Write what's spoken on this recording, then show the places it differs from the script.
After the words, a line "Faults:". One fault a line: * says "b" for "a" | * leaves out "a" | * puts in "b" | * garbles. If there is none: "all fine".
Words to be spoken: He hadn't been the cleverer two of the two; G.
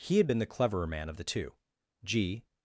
He had been the cleverer man of the two; G.
Faults:
* says "had" for "hadn't"
* says "man" for "two"